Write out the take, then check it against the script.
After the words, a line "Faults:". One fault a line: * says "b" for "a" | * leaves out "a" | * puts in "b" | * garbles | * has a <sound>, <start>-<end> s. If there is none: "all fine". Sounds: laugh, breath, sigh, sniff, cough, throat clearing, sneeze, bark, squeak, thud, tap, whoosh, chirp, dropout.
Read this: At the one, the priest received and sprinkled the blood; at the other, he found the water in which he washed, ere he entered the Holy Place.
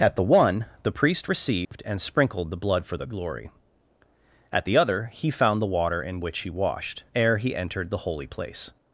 At the one, the priest received and sprinkled the blood; for the glory at the other, he found the water in which he washed, ere he entered the Holy Place.
Faults:
* has a dropout, 1.7-1.7 s
* puts in "for the glory"